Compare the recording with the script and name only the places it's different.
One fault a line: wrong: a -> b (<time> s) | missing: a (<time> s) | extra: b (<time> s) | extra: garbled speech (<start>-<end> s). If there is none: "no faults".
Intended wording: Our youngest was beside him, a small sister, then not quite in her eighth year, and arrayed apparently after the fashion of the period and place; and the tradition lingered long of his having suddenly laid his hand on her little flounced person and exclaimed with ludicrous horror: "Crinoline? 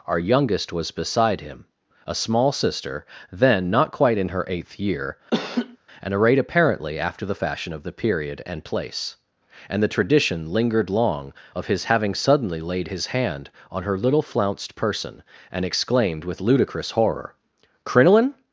no faults